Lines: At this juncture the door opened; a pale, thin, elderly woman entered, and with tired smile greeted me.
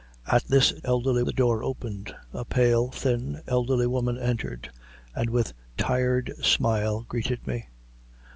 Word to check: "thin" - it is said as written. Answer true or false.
true